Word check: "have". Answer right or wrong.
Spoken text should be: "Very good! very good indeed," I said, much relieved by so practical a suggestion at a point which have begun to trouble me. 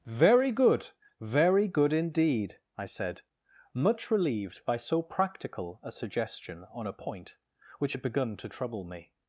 wrong